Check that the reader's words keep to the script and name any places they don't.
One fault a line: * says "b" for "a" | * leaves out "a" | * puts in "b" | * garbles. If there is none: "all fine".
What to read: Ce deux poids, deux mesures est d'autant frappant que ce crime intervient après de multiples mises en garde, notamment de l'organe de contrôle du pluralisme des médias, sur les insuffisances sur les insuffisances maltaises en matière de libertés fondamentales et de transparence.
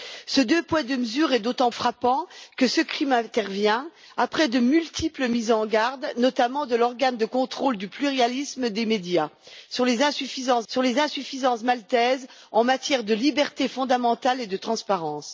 all fine